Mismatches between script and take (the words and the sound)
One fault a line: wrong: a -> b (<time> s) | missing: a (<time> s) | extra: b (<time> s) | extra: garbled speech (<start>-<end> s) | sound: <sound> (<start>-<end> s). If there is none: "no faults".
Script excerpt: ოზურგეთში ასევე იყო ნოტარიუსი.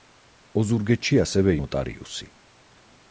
missing: იყო (1.6 s)